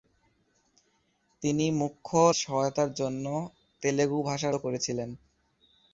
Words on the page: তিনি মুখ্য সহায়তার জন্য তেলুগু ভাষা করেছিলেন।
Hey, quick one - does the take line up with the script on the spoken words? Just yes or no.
yes